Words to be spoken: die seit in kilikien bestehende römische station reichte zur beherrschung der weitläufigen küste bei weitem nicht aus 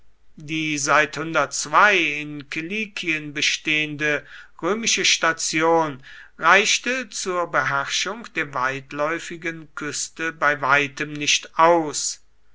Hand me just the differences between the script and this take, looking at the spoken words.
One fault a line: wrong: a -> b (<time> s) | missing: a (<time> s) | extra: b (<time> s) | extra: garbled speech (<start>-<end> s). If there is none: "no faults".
no faults